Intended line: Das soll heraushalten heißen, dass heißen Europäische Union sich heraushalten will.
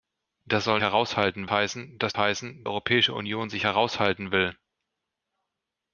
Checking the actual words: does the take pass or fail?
pass